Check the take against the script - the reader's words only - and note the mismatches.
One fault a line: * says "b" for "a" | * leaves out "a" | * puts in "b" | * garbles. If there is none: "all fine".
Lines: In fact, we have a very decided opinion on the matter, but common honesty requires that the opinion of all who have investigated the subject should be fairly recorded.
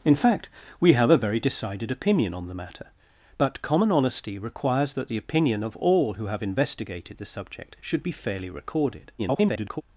* garbles